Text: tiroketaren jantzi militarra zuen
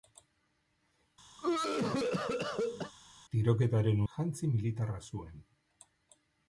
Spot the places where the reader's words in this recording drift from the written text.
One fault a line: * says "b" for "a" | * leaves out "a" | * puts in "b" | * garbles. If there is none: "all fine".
all fine